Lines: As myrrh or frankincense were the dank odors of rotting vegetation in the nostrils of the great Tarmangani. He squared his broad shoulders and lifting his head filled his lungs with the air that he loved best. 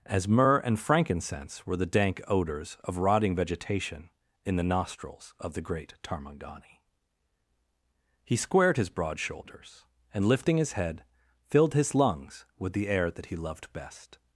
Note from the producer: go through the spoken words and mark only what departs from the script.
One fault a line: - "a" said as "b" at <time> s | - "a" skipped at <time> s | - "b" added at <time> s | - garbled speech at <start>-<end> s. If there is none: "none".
- "or" said as "and" at 0.6 s